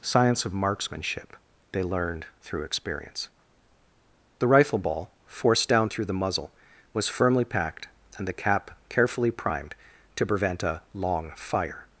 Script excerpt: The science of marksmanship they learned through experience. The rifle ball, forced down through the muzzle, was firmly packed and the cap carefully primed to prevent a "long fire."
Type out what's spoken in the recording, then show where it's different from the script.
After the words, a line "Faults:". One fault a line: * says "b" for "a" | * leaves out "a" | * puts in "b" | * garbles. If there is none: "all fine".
science of marksmanship they learned through experience. The rifle ball, forced down through the muzzle, was firmly packed and the cap carefully primed to prevent a "long fire."
Faults:
* leaves out "The"